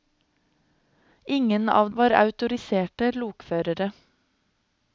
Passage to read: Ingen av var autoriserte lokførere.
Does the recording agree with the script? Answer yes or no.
yes